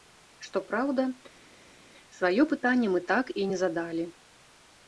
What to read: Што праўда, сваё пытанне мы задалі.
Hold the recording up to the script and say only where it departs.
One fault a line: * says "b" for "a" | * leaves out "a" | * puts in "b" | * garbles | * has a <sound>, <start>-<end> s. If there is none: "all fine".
* puts in "так і не"